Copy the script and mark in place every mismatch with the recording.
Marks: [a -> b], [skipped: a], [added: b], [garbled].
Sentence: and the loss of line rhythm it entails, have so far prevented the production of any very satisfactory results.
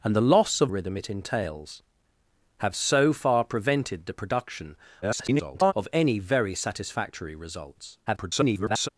and the loss of [skipped: line] rhythm it entails, have so far prevented the production [garbled] of any very satisfactory results. [garbled]